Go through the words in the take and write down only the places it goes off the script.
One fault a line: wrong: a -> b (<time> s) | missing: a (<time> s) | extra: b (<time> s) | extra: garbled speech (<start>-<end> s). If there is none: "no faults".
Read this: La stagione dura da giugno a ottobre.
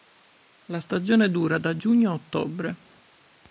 no faults